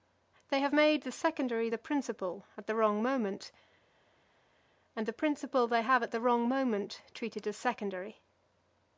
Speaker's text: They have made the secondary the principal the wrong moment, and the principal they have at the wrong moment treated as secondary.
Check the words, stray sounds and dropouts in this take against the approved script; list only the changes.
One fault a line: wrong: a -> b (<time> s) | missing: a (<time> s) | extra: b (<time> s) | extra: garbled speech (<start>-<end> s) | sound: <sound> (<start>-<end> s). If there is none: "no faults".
extra: at (2.6 s)